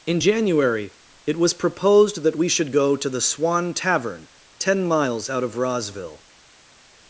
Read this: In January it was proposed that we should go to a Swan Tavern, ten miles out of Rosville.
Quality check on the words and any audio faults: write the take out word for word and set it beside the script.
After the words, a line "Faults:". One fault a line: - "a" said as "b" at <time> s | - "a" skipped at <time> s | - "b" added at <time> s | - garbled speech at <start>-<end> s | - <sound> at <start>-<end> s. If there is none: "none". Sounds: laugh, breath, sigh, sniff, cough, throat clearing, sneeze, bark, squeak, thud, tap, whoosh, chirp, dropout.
In January it was proposed that we should go to the Swan Tavern, ten miles out of Rosville.
Faults:
- "a" said as "the" at 3.1 s